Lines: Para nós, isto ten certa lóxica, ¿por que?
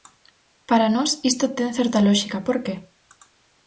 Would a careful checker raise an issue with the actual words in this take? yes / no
no